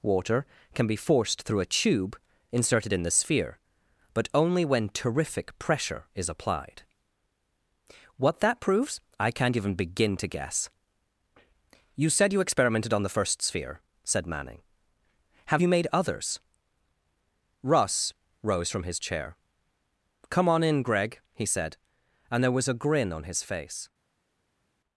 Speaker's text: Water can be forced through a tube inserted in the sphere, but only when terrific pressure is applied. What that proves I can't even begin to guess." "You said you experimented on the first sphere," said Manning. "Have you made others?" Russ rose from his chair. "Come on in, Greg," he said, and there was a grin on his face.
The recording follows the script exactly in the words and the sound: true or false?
true